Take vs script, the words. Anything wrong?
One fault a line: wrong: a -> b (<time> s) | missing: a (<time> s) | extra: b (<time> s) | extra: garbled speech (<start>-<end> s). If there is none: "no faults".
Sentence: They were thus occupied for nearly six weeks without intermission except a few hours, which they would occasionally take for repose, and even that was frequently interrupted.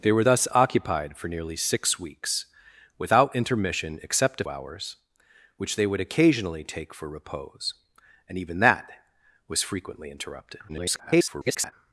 missing: few (4.4 s)
extra: garbled speech (10.7-11.7 s)